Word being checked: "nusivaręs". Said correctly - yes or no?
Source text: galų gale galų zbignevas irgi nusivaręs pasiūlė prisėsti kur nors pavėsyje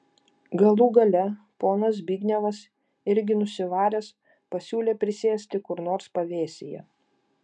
yes